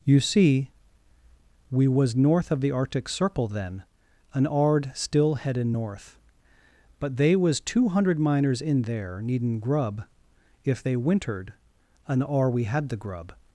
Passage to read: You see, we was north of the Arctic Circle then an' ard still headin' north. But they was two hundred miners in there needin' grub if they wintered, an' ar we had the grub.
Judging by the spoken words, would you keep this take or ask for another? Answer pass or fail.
pass